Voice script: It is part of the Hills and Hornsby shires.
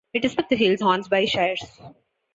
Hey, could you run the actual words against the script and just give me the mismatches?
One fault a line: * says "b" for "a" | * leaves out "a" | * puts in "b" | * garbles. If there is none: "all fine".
* leaves out "part"
* leaves out "and"